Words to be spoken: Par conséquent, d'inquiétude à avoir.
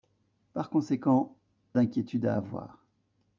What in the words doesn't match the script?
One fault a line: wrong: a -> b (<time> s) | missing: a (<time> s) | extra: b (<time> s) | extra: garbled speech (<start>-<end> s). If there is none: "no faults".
no faults